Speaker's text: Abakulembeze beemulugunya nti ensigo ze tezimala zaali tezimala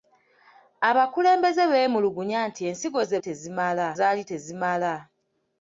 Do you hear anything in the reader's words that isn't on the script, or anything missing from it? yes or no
no